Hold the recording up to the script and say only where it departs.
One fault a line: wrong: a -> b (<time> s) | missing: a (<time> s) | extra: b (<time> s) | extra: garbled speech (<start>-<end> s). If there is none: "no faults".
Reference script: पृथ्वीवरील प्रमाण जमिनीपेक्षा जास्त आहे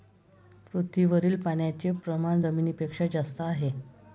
extra: पाण्याचे (1.4 s)